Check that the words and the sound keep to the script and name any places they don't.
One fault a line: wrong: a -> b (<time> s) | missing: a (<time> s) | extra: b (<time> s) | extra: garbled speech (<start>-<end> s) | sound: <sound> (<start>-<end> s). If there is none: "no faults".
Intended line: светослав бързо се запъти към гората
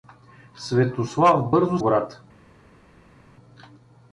missing: се запъти към (1.8 s)